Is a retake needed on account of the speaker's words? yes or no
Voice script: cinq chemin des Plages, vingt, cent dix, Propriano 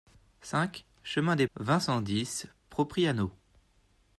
yes